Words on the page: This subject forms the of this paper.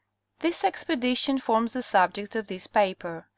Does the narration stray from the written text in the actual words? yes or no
yes